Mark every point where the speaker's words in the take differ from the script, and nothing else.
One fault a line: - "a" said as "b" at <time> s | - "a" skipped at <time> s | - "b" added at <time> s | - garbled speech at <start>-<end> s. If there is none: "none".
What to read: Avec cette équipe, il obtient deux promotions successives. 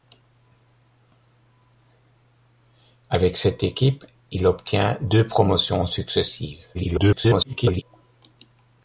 - garbled speech at 6.7-7.8 s